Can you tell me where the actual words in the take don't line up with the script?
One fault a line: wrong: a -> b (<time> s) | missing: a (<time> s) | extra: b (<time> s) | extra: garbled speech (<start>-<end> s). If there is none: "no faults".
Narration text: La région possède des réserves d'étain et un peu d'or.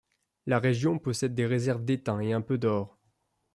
no faults